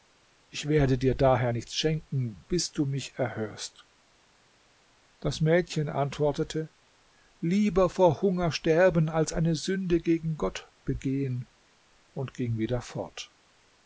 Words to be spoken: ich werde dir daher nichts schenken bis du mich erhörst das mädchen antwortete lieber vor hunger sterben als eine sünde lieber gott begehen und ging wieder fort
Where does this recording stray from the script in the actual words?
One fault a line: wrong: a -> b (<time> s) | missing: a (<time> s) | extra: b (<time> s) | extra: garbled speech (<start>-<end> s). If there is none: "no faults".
wrong: lieber -> gegen (10.0 s)